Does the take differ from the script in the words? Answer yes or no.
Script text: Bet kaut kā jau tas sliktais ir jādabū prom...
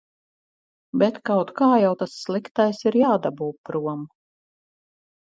no